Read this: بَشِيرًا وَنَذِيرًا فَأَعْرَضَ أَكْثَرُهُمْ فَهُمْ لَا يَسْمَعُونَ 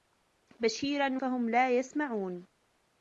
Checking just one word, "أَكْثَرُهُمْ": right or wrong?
wrong